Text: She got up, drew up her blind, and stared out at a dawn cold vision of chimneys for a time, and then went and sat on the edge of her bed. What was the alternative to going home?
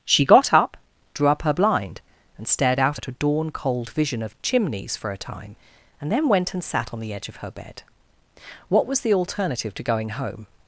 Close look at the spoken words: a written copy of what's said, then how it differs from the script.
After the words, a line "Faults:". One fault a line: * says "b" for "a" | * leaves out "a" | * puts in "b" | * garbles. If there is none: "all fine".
She got up, drew up her blind, and stared out at a dawn cold vision of chimneys for a time, and then went and sat on the edge of her bed. What was the alternative to going home?
Faults:
all fine